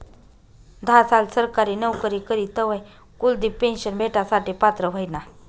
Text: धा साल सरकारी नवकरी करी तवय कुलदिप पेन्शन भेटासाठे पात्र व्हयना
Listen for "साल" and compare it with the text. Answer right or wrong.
right